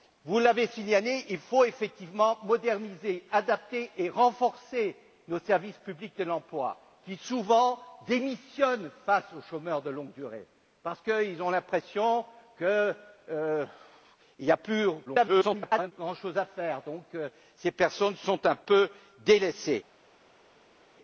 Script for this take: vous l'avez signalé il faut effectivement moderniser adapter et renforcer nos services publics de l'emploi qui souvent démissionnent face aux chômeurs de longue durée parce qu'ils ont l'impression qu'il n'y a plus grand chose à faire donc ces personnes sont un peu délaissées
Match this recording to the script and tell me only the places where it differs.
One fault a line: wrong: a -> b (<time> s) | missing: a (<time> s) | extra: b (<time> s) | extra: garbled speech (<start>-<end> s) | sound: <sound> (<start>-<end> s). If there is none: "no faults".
extra: garbled speech (15.1-15.9 s)